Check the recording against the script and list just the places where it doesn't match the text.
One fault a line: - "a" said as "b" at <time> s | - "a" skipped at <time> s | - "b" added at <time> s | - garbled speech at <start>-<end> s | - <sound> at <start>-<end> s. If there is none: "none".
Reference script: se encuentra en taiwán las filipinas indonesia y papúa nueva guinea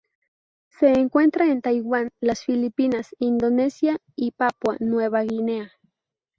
none